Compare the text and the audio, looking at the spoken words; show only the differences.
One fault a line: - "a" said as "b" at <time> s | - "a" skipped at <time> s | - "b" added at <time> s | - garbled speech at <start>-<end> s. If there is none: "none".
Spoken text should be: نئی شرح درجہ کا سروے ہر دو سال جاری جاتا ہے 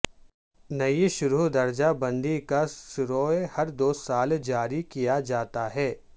- "بندی" added at 2.0 s
- "کیا" added at 4.8 s